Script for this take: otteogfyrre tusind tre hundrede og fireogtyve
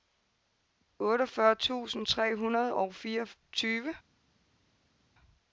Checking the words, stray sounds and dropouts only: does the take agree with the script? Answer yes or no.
yes